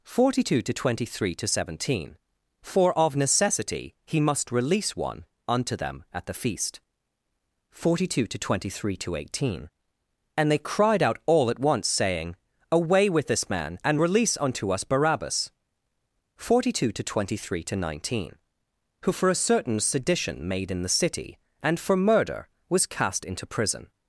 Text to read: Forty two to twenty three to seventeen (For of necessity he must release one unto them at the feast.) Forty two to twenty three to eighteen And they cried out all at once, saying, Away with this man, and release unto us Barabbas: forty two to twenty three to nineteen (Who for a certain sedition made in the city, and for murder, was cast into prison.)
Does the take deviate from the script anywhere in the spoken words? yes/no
no